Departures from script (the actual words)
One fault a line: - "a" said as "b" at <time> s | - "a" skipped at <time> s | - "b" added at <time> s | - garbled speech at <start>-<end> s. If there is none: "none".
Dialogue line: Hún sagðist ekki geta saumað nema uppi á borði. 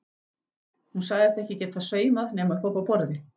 - "uppi" added at 2.7 s